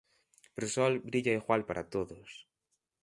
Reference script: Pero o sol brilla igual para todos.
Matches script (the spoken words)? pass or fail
pass